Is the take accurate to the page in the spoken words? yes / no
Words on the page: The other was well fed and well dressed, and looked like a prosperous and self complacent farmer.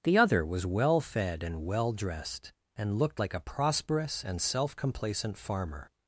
yes